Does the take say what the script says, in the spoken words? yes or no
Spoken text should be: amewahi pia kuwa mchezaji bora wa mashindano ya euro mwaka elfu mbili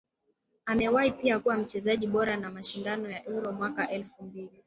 yes